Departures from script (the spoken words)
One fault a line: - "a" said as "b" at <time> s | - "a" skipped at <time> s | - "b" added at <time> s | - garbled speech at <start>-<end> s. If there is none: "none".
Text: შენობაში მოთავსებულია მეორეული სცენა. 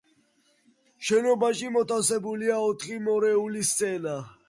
- "ოთხი" added at 2.7 s